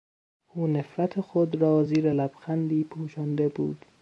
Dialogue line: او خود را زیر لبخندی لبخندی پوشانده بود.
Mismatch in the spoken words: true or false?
true